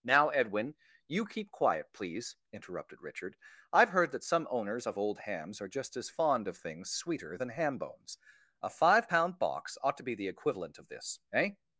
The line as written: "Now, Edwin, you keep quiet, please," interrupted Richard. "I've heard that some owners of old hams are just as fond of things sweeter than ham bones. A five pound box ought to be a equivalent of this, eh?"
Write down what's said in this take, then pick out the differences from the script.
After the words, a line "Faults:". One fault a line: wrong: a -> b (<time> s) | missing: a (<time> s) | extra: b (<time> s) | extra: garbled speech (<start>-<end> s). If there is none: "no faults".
"Now, Edwin, you keep quiet, please," interrupted Richard. "I've heard that some owners of old hams are just as fond of things sweeter than ham bones. A five pound box ought to be the equivalent of this, eh?"
Faults:
wrong: a -> the (10.1 s)